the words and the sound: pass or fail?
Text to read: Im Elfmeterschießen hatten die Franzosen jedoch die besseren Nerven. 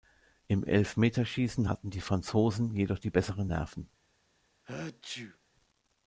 fail